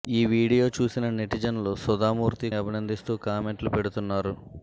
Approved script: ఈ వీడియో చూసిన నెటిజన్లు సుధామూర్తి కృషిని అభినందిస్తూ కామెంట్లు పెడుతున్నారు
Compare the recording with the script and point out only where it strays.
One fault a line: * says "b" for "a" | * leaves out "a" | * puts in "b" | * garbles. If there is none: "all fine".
* leaves out "కృషిని"